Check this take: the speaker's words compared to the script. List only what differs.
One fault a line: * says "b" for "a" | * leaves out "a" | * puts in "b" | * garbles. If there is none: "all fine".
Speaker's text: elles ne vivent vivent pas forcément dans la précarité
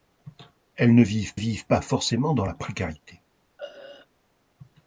all fine